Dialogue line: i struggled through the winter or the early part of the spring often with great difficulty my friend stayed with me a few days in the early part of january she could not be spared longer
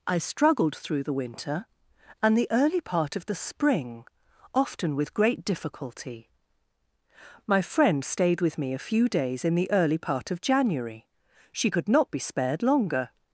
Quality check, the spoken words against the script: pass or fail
fail